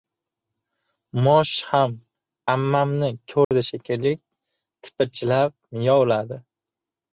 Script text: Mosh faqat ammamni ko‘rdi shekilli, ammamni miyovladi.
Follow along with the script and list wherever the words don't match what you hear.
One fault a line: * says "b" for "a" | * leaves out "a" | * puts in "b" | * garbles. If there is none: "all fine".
* says "ham" for "faqat"
* says "tipirchilab" for "ammamni"